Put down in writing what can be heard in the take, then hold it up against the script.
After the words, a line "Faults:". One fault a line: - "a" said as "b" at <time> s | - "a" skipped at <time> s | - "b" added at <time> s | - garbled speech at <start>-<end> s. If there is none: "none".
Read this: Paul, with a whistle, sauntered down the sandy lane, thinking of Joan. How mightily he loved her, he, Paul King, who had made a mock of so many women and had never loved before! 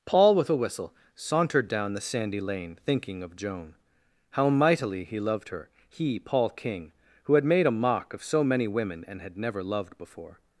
Paul, with a whistle, sauntered down the sandy lane, thinking of Joan. How mightily he loved her, he, Paul King, who had made a mock of so many women and had never loved before!
Faults:
none